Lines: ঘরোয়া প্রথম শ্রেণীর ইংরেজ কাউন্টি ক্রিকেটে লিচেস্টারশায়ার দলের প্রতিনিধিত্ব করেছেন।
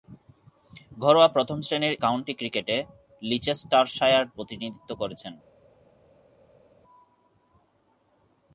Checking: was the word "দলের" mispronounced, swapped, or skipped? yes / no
yes